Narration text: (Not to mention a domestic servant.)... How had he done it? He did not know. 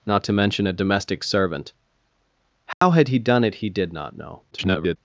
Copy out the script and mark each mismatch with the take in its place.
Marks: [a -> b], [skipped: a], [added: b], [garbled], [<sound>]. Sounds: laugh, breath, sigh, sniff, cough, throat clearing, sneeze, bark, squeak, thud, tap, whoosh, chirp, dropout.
(Not to mention a domestic servant.)... How [dropout] had he done it? He did not know. [garbled]